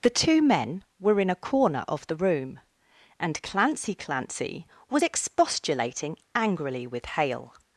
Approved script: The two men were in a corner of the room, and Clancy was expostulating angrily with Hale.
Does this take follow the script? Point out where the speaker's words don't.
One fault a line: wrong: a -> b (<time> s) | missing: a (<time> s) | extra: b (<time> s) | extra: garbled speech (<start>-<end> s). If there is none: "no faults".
extra: Clancy (3.9 s)